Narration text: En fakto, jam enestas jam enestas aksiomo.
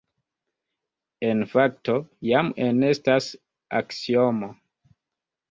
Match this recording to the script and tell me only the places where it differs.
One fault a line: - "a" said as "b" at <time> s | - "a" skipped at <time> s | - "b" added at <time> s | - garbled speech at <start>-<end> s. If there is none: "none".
- "jam enestas" skipped at 3.3 s